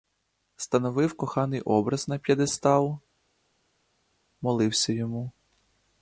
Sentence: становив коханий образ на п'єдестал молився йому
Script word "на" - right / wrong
right